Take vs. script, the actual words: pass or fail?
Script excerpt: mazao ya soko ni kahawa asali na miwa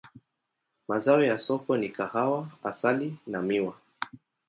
pass